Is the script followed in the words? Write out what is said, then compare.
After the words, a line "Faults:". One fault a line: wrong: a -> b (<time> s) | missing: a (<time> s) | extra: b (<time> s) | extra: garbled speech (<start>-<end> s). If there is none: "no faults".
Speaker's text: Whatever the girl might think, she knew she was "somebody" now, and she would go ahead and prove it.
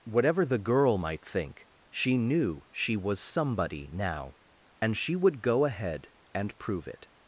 Whatever the girl might think, she knew she was "somebody" now, and she would go ahead and prove it.
Faults:
no faults